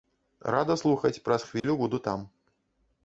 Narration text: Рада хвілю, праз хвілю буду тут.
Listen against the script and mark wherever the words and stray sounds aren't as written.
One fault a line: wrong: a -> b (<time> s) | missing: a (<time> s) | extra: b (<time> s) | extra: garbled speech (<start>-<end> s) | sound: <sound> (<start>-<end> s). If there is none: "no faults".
wrong: хвілю -> слухаць (0.8 s)
sound: dropout (1.6-1.6 s)
wrong: тут -> там (2.1 s)